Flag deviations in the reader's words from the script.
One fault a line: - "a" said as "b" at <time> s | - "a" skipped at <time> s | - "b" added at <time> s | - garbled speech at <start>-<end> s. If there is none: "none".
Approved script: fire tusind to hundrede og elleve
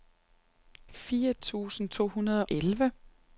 - "og" skipped at 2.5 s